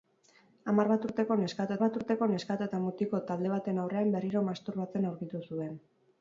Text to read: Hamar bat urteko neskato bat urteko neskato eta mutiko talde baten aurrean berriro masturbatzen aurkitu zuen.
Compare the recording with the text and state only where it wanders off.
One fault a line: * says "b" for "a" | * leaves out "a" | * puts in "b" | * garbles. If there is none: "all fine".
all fine